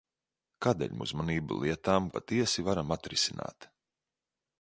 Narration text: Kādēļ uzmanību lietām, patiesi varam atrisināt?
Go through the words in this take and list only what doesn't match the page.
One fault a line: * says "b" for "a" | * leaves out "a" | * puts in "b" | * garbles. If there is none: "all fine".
all fine